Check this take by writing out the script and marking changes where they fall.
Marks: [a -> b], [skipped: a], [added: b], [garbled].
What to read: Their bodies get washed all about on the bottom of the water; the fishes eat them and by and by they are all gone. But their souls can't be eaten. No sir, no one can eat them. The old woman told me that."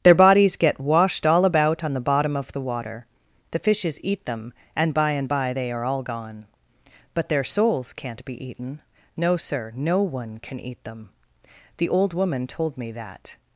Their bodies get washed all about on the bottom of the water; the fishes eat them and by and by they are all gone. But their souls can't be eaten. No sir, no one can eat them. The old woman told me that."